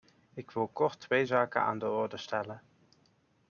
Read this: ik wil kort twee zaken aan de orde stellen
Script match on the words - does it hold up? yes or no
yes